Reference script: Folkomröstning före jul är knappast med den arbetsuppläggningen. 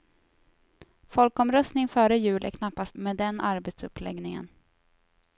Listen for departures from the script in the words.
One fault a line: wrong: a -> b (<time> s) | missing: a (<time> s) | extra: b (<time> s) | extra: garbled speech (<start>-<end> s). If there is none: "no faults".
no faults